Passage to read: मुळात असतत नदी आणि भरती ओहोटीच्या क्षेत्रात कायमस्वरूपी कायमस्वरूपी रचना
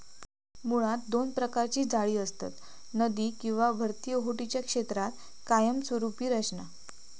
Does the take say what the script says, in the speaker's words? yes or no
no